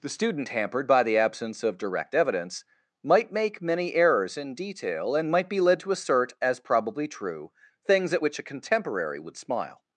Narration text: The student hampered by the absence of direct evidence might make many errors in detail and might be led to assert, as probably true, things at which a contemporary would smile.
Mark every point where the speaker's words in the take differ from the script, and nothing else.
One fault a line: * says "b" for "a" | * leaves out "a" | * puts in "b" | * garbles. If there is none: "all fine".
all fine